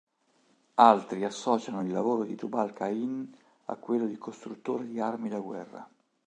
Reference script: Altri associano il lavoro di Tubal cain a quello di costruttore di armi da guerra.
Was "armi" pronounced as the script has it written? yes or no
yes